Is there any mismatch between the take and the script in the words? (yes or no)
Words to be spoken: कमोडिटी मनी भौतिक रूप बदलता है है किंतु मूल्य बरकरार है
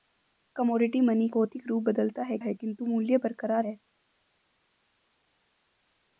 no